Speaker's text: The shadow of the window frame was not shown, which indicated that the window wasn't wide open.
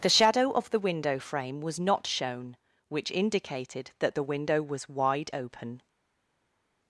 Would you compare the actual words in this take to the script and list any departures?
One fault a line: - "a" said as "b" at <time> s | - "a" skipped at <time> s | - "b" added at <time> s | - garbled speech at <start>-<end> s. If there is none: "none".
- "wasn't" said as "was" at 4.6 s